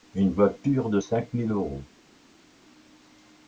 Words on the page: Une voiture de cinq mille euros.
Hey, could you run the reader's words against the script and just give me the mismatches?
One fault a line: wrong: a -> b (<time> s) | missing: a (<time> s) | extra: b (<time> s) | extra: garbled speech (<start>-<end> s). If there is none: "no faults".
no faults